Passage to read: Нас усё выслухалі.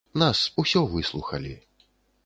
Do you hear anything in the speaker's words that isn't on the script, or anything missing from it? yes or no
no